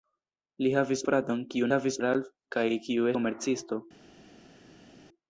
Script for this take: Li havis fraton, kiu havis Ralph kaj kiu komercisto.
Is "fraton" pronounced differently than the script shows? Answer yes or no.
no